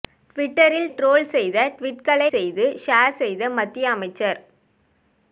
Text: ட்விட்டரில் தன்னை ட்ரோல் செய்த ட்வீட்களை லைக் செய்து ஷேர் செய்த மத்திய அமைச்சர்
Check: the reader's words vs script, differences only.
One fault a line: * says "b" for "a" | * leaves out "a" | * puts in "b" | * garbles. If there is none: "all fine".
* leaves out "தன்னை"
* leaves out "லைக்"